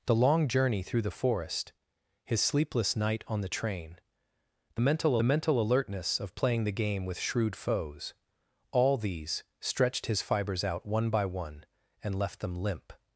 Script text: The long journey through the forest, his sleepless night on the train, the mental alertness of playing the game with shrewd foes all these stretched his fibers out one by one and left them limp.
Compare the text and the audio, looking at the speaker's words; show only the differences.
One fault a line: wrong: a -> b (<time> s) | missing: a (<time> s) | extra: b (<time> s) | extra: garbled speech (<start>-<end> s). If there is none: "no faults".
extra: mental (5.2 s)